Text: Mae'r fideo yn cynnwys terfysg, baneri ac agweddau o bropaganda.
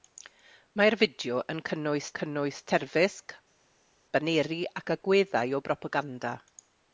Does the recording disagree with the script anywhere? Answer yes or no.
yes